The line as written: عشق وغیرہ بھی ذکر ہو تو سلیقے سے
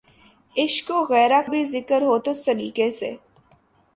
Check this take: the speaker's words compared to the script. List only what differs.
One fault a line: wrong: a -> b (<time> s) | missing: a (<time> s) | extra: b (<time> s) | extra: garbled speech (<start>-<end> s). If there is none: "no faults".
no faults